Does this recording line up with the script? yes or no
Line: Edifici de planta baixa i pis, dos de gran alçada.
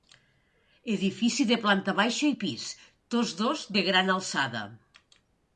no